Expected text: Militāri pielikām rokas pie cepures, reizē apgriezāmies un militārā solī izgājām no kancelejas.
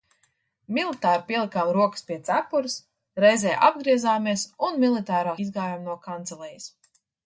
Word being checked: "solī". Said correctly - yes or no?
no